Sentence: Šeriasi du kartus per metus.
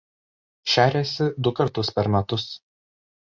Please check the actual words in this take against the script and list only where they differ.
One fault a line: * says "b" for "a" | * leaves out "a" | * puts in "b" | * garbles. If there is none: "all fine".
all fine